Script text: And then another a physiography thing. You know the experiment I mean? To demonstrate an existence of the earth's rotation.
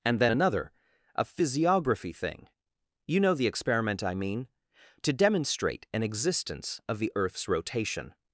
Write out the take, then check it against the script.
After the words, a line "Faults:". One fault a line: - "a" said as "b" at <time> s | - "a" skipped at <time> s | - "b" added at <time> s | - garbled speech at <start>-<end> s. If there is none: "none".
And then another a physiography thing. You know the experiment I mean? To demonstrate an existence of the earth's rotation.
Faults:
none